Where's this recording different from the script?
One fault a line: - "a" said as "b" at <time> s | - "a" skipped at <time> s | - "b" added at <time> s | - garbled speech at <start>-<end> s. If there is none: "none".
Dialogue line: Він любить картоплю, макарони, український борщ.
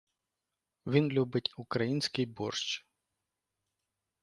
- "картоплю макарони" skipped at 1.5 s